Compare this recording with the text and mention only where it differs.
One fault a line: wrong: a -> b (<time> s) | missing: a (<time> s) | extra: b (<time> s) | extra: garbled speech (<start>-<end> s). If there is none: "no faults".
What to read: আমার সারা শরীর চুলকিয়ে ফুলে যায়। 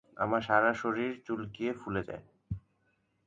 no faults